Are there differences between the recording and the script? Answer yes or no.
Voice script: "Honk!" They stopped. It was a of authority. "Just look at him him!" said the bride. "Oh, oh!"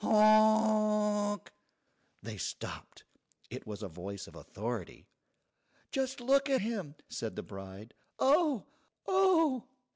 yes